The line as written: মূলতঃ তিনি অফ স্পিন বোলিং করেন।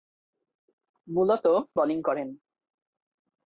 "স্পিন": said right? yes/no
no